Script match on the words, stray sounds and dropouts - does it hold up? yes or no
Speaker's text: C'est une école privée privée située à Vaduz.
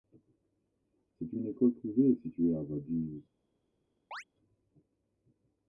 no